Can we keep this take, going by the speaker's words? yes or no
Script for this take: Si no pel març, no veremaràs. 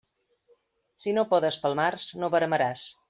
no